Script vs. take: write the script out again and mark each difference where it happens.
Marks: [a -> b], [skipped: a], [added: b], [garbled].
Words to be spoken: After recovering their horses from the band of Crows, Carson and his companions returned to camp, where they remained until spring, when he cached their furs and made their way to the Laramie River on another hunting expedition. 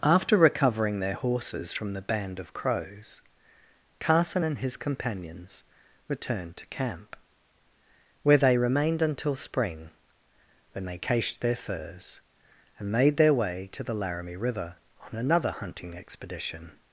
After recovering their horses from the band of Crows, Carson and his companions returned to camp, where they remained until spring, when [he -> they] cached their furs and made their way to the Laramie River on another hunting expedition.